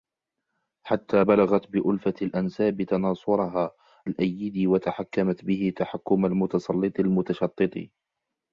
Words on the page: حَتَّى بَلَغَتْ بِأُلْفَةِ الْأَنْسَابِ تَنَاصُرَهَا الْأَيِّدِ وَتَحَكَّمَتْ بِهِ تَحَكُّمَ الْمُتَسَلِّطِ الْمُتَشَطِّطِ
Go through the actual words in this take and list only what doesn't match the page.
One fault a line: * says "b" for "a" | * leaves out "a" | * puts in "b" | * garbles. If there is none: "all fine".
all fine